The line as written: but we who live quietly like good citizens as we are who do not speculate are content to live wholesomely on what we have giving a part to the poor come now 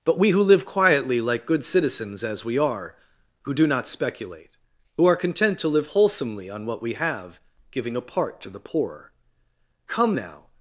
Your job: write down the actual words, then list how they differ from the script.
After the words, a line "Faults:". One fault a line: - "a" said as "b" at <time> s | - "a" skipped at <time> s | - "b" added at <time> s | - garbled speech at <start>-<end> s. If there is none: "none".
but we who live quietly like good citizens as we are who do not speculate who are content to live wholesomely on what we have giving a part to the poor come now
Faults:
- "who" added at 5.0 s